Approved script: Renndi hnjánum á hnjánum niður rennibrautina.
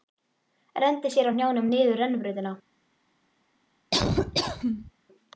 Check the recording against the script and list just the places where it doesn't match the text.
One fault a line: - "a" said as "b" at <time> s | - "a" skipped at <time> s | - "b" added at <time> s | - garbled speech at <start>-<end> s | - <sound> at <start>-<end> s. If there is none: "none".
- "hnjánum" said as "sér" at 1.2 s
- laugh at 3.9-4.9 s